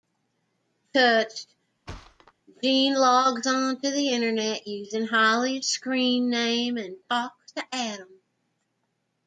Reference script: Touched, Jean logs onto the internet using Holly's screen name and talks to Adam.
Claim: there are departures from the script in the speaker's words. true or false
false